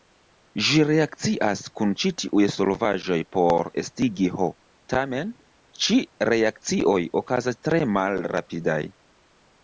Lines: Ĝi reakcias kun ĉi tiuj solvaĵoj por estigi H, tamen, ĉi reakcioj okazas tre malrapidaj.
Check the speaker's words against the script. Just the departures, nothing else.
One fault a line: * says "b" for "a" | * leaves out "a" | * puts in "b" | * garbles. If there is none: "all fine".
all fine